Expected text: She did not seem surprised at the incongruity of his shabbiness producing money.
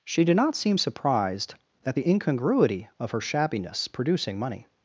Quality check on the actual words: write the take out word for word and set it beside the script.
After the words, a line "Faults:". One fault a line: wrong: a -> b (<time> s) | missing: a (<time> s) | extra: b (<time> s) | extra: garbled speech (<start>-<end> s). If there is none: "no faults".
She did not seem surprised at the incongruity of her shabbiness producing money.
Faults:
wrong: his -> her (3.1 s)